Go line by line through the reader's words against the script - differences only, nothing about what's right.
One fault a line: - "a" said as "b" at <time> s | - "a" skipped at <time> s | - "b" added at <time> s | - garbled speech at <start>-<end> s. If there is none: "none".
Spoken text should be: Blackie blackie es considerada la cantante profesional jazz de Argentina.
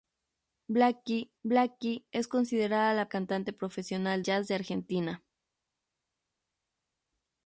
none